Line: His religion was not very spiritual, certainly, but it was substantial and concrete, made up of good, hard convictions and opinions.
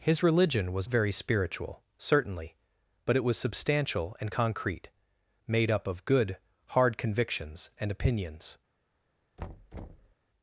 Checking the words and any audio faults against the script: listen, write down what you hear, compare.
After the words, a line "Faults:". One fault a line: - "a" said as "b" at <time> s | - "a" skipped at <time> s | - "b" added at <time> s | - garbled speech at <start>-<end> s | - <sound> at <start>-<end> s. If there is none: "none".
His religion was very spiritual, certainly, but it was substantial and concrete, made up of good, hard convictions and opinions.
Faults:
- "not" skipped at 0.9 s
- thud at 9.4-10.1 s